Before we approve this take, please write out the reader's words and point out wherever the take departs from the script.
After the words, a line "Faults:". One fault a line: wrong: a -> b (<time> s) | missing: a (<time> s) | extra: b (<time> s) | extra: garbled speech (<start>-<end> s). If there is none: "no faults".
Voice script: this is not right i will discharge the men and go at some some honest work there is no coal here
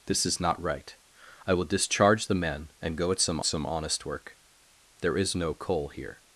this is not right i will discharge the men and go at some some honest work there is no coal here
Faults:
no faults